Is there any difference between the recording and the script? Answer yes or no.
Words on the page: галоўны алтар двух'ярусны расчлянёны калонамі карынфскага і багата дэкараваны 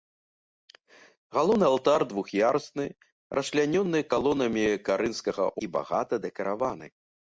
no